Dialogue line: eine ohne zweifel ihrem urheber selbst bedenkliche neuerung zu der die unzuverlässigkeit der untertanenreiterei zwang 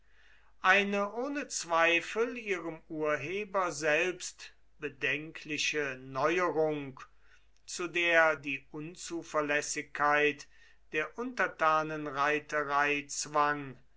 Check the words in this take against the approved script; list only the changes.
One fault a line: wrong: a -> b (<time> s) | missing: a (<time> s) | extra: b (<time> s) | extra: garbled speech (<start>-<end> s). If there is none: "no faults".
no faults